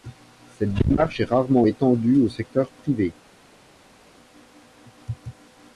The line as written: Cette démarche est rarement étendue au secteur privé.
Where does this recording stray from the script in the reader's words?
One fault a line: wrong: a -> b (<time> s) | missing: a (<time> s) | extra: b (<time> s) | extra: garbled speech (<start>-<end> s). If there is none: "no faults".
no faults